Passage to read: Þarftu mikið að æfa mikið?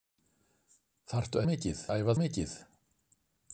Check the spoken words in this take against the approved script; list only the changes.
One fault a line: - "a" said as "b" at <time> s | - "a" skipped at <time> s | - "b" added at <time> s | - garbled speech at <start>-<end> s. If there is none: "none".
none